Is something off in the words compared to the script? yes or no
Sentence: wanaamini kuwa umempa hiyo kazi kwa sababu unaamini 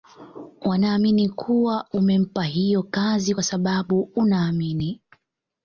no